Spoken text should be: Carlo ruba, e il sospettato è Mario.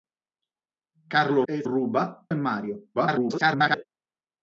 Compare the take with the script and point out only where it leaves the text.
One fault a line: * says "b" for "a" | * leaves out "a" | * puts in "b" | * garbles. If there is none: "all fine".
* leaves out "ruba"
* says "ruba" for "sospettato"
* garbles